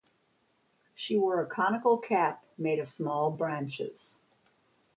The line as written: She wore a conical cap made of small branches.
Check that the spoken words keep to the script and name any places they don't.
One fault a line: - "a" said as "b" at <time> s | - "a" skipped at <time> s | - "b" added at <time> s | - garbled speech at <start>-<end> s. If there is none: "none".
none